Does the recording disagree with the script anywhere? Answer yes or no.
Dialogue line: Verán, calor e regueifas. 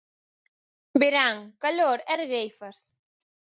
no